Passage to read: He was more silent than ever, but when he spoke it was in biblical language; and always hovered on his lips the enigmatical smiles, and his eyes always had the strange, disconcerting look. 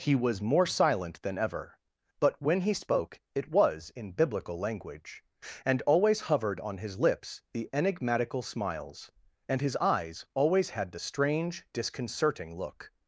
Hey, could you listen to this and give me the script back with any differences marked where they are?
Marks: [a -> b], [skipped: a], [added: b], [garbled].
He was more silent than ever, but when he spoke it was in biblical language; and always hovered on his lips the enigmatical smiles, and his eyes always had the strange, disconcerting look.